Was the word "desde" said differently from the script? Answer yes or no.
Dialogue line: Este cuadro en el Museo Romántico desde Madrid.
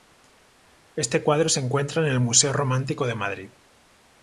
yes